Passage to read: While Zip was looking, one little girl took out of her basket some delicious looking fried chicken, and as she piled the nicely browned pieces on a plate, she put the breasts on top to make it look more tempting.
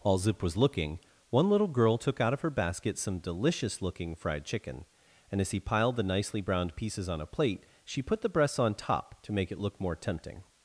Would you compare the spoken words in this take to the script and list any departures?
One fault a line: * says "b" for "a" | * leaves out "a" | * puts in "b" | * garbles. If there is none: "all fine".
* says "he" for "she"